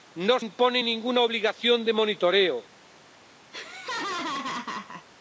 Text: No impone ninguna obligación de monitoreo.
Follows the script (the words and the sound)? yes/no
no